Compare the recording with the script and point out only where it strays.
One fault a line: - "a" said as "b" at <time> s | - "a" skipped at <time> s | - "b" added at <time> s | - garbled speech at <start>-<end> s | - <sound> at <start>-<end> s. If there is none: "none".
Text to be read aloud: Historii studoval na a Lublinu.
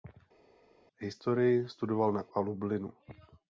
none